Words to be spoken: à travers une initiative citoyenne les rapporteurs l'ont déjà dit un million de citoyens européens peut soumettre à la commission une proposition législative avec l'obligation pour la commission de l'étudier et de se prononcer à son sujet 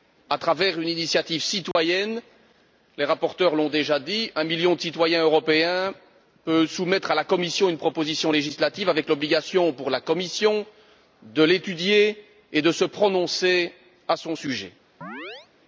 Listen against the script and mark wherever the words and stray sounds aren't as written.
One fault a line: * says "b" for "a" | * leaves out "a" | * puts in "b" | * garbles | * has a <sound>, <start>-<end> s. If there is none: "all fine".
* has a dropout, 1.7-1.8 s
* has a chirp, 15.0-15.5 s